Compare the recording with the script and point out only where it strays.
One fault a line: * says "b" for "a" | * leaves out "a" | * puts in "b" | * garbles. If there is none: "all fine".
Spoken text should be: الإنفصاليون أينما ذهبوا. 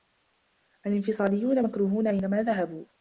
* puts in "مكروهون"